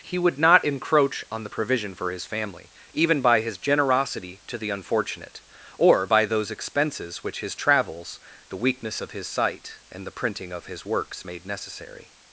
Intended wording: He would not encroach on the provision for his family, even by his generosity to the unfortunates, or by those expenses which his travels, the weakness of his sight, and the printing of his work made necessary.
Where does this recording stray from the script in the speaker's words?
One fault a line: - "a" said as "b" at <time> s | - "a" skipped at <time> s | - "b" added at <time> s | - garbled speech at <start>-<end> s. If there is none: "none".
- "unfortunates" said as "unfortunate" at 4.7 s
- "work" said as "works" at 10.8 s